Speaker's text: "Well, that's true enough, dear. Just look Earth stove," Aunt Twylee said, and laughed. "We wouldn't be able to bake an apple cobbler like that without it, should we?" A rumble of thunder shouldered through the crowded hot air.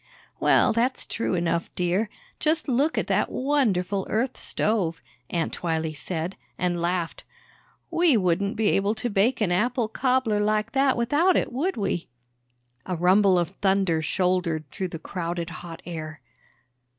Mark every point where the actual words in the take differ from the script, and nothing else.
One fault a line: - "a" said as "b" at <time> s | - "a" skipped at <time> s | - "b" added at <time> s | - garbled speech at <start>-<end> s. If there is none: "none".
- "at that wonderful" added at 3.0 s
- "should" said as "would" at 11.5 s